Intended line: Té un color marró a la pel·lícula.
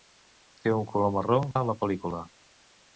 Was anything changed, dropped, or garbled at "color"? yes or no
no